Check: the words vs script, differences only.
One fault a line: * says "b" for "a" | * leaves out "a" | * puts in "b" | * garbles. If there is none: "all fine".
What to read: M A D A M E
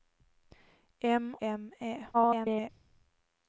* leaves out "A D A"
* garbles